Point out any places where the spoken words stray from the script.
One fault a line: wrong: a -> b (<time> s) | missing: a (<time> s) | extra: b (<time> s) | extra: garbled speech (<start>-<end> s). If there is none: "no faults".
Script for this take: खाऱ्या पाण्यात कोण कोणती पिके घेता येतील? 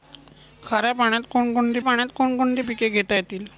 extra: पाण्यात कोण कोणती (1.8 s)